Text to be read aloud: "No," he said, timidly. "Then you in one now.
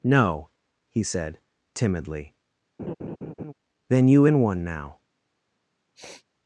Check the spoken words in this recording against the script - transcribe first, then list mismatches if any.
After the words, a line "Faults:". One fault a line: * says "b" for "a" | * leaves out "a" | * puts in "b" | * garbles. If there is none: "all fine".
"No," he said, timidly. "Then you in one now.
Faults:
all fine